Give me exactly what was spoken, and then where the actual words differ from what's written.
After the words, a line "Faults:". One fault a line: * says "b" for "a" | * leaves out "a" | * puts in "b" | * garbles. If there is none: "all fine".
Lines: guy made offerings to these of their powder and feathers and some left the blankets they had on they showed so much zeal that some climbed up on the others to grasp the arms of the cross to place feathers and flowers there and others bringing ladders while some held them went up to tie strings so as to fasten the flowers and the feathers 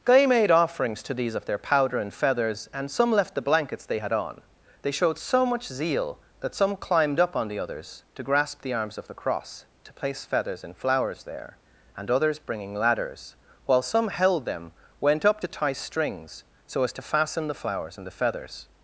guy made offerings to these of their powder and feathers and some left the blankets they had on they showed so much zeal that some climbed up on the others to grasp the arms of the cross to place feathers and flowers there and others bringing ladders while some held them went up to tie strings so as to fasten the flowers and the feathers
Faults:
all fine